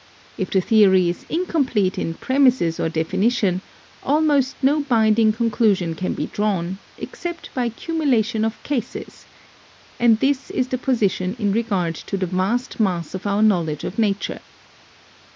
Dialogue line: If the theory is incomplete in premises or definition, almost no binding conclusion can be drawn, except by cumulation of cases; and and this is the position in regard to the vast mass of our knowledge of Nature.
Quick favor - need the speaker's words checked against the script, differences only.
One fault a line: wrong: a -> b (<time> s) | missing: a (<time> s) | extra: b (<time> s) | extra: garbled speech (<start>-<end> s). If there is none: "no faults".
missing: and (10.2 s)